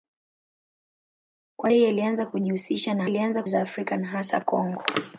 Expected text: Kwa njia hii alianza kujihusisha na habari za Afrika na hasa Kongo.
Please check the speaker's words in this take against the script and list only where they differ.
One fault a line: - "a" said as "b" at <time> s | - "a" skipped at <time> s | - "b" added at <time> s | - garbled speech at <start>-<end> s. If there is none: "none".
- "njia" skipped at 1.7 s
- "habari" said as "alianza" at 3.0 s